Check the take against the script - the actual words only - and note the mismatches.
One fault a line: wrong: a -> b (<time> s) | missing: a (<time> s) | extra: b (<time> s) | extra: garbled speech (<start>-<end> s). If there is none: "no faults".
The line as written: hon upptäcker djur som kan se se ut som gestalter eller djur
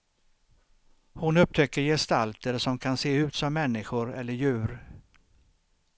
wrong: djur -> gestalter (1.8 s)
missing: se (3.1 s)
wrong: gestalter -> människor (3.5 s)